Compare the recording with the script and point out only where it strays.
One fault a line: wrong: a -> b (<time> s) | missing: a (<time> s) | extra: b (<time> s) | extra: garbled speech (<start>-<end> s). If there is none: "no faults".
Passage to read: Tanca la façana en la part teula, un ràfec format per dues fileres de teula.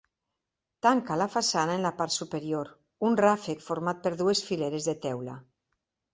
wrong: teula -> superior (2.1 s)